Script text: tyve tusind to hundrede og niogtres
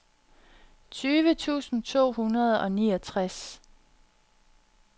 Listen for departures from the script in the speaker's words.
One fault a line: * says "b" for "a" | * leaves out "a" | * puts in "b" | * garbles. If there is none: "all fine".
all fine